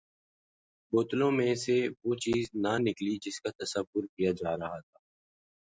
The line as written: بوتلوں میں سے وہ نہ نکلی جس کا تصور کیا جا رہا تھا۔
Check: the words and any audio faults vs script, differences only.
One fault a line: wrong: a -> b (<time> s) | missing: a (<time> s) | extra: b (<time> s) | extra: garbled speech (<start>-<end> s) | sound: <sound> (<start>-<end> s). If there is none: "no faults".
extra: چیز (2.2 s)